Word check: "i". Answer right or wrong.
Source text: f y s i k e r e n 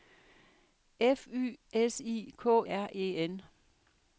right